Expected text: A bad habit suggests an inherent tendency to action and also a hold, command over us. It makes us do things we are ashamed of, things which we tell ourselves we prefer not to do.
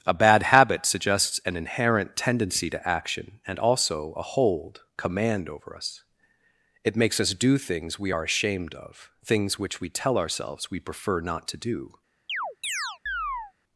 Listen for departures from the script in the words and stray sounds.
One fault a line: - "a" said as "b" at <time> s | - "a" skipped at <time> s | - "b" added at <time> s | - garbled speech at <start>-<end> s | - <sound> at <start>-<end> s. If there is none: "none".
- chirp at 12.3-13.5 s